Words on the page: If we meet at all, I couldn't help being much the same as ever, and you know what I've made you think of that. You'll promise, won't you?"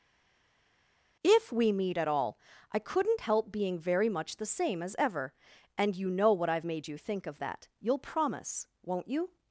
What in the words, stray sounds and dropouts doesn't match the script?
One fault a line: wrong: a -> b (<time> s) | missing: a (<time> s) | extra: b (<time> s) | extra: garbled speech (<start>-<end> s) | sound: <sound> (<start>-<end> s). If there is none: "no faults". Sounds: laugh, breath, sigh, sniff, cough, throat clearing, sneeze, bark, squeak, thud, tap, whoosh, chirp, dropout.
extra: very (3.8 s)